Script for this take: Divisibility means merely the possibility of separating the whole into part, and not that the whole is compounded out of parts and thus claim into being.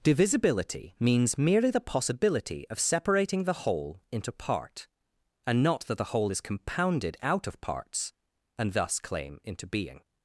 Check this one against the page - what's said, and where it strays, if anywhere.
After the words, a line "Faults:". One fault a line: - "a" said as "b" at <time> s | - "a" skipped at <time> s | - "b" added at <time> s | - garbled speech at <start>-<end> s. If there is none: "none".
Divisibility means merely the possibility of separating the whole into part, and not that the whole is compounded out of parts and thus claim into being.
Faults:
none